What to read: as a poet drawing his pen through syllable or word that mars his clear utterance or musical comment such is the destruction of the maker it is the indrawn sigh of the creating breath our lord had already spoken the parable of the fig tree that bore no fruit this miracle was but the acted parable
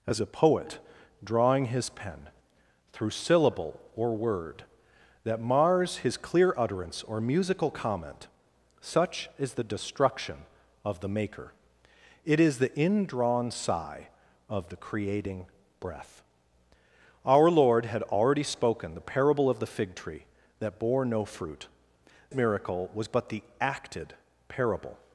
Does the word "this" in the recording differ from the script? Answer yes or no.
yes